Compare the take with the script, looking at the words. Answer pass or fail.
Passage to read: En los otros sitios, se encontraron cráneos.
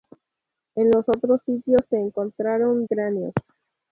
pass